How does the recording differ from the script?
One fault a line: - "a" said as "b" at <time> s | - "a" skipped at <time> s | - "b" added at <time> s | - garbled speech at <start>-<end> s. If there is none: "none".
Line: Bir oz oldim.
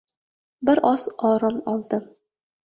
- "orom" added at 1.3 s